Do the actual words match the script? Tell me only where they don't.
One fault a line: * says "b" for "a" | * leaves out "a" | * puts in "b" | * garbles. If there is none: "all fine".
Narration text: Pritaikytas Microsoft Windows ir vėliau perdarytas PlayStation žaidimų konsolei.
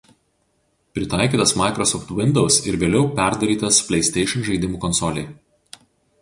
all fine